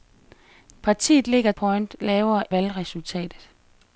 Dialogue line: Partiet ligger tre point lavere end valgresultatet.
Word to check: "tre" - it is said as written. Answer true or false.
false